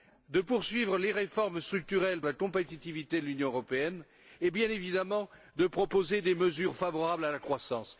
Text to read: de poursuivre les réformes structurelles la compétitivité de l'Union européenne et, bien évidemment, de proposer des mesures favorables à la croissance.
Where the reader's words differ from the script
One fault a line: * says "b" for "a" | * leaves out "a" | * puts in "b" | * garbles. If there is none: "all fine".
all fine